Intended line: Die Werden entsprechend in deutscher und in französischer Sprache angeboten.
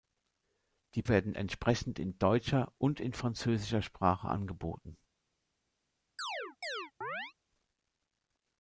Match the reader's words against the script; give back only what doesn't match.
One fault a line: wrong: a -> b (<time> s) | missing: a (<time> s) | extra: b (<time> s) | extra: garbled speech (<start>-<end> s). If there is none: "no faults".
no faults